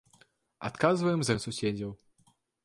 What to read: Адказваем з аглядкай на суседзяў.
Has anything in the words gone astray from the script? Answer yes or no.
yes